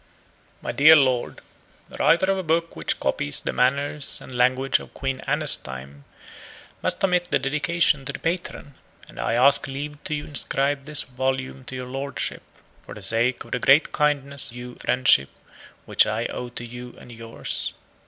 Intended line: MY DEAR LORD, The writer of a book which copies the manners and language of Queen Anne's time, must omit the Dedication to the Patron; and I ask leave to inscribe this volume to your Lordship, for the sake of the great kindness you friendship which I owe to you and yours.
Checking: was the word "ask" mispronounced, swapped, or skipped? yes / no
no